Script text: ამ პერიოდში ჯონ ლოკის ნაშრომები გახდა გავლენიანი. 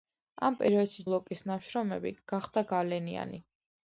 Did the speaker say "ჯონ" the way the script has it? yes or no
no